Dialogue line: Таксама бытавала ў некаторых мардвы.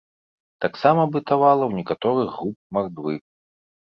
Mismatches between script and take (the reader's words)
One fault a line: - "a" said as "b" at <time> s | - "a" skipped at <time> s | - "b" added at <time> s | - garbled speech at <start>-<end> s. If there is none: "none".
- "груп" added at 2.4 s